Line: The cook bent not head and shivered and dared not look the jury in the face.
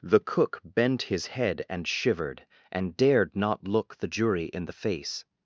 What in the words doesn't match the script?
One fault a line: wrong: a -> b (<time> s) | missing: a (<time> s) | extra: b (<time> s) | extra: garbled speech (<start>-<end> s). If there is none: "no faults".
wrong: not -> his (1.0 s)